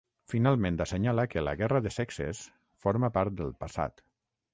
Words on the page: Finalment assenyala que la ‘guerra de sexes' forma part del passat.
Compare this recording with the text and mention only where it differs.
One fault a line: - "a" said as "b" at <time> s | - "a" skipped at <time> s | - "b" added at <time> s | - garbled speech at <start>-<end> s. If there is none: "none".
none